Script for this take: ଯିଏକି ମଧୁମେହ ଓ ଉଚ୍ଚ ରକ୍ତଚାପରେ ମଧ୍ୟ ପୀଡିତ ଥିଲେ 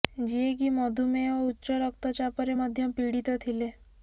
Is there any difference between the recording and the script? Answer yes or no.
no